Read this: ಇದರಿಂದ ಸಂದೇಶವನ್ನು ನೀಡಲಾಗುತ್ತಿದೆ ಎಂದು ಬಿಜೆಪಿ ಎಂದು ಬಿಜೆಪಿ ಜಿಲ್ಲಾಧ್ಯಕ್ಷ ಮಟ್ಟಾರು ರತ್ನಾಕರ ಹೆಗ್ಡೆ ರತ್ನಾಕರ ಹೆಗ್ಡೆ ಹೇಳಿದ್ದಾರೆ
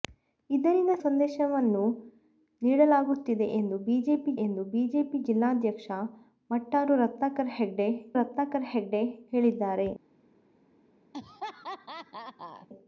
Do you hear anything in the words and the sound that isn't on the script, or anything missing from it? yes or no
yes